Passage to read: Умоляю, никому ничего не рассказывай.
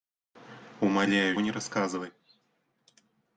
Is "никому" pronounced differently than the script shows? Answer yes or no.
yes